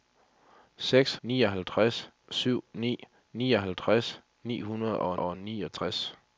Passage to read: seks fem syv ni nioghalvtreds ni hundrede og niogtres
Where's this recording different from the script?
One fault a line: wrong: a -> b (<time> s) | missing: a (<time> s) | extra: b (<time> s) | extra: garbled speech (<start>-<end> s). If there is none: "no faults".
wrong: fem -> nioghalvtreds (1.2 s)
extra: og (5.2 s)